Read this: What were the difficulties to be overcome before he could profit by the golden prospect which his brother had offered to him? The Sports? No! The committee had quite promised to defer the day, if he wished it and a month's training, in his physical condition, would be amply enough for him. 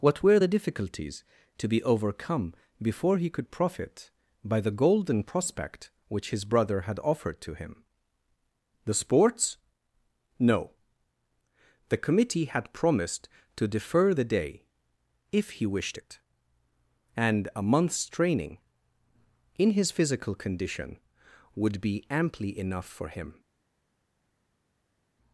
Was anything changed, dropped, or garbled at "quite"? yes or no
yes